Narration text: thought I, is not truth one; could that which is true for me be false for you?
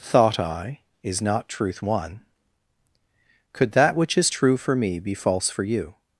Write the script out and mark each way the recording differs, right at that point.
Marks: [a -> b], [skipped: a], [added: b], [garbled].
thought I, is not truth one; could that which is true for me be false for you?